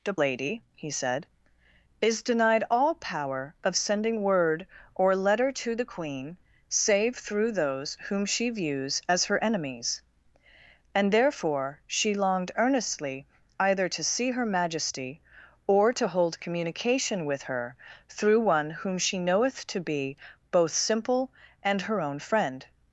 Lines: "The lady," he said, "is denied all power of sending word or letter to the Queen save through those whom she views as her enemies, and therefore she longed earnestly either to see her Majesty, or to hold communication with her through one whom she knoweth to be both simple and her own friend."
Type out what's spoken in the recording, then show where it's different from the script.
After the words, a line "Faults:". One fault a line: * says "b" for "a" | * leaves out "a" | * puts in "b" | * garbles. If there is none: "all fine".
"The lady," he said, "is denied all power of sending word or letter to the Queen save through those whom she views as her enemies, and therefore she longed earnestly either to see her Majesty, or to hold communication with her through one whom she knoweth to be both simple and her own friend."
Faults:
all fine